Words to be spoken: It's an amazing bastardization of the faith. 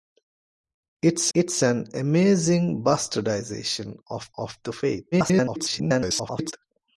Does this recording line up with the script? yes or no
no